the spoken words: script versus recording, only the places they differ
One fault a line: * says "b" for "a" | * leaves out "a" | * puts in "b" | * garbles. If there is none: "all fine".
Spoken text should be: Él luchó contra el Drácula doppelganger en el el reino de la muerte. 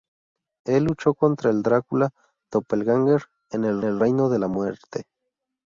all fine